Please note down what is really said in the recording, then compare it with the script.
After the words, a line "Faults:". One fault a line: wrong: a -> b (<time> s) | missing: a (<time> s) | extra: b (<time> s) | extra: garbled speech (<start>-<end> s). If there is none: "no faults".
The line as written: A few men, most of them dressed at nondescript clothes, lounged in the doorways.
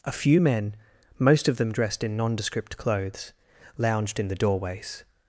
A few men, most of them dressed in nondescript clothes, lounged in the doorways.
Faults:
wrong: at -> in (2.0 s)